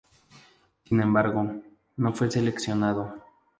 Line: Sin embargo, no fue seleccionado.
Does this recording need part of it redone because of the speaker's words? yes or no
no